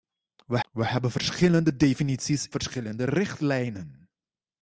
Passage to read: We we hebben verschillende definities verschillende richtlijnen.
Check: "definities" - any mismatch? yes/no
no